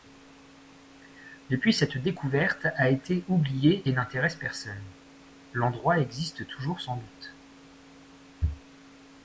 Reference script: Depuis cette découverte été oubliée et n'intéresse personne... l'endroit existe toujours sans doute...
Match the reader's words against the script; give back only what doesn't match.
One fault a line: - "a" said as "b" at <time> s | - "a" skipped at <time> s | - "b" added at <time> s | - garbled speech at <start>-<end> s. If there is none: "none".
- "a" added at 2.8 s